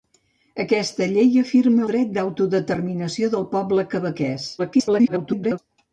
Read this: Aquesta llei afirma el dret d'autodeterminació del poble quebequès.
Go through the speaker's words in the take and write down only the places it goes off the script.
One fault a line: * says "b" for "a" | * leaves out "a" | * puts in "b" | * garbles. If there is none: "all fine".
* leaves out "el"
* garbles